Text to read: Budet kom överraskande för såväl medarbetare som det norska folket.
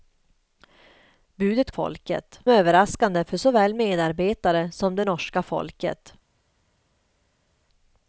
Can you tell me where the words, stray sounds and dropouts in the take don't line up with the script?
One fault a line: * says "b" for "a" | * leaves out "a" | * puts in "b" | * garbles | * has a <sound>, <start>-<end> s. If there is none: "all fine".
* says "folket" for "kom"